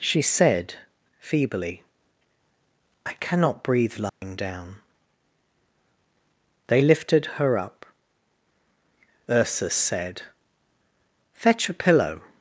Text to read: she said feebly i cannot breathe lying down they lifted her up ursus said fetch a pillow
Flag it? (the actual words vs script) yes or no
no